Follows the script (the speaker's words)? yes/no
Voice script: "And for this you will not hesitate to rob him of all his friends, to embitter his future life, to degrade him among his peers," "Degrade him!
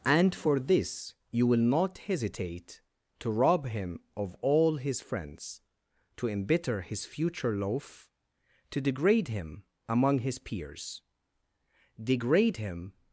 no